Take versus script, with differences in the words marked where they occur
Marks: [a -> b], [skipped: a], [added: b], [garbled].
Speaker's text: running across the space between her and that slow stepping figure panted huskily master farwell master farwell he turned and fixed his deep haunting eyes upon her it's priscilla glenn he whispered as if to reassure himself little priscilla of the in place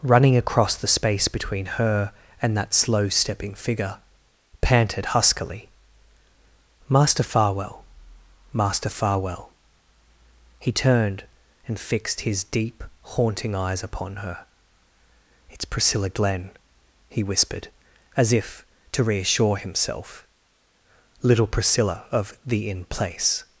running across the space between her and that slow stepping figure panted huskily master farwell master farwell he turned and fixed his deep haunting eyes upon her it's priscilla glenn he whispered as if to reassure himself little priscilla of the in place